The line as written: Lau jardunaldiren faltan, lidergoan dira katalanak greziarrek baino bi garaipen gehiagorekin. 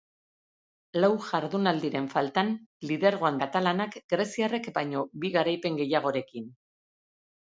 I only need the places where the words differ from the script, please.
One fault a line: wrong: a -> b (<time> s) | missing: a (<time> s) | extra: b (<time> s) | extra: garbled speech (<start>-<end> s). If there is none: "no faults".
missing: dira (3.4 s)